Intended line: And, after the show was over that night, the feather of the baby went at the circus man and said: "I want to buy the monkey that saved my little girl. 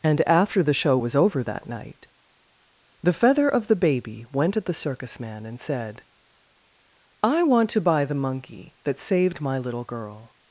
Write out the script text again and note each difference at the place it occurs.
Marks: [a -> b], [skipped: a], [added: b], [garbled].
And, after the show was over that night, the feather of the baby went at the circus man and said: "I want to buy the monkey that saved my little girl.